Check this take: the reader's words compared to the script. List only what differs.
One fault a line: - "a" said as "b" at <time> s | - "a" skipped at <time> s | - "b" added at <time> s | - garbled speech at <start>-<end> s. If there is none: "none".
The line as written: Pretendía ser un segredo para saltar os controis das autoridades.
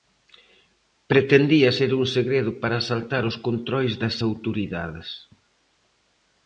none